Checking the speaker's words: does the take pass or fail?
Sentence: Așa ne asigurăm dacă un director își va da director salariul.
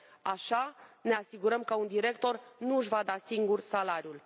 fail